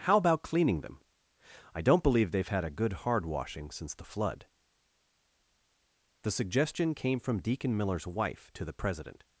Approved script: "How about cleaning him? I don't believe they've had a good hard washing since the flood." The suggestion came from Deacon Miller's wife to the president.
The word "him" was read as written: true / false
false